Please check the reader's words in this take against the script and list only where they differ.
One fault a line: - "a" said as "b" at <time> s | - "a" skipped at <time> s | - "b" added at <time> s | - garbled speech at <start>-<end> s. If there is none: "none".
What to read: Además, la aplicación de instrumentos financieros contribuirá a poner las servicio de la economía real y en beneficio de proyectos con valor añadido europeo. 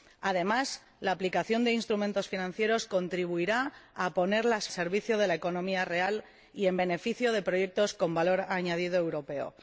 none